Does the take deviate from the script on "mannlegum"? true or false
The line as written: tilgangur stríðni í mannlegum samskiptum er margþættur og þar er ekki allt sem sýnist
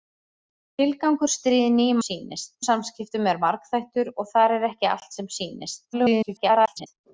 true